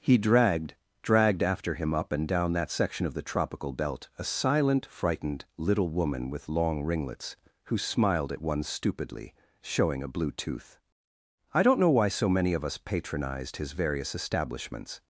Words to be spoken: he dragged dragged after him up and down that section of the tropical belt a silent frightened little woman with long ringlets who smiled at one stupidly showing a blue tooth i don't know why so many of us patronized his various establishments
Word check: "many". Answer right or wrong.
right